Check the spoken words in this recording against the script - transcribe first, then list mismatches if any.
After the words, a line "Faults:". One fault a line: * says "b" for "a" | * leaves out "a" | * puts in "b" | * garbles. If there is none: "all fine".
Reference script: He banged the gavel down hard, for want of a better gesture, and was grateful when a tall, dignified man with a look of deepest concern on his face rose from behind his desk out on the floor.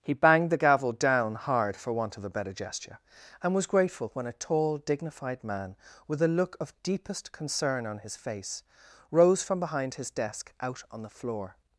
He banged the gavel down hard, for want of a better gesture, and was grateful when a tall, dignified man with a look of deepest concern on his face rose from behind his desk out on the floor.
Faults:
all fine